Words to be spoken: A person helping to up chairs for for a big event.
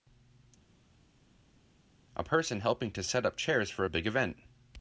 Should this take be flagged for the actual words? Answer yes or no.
yes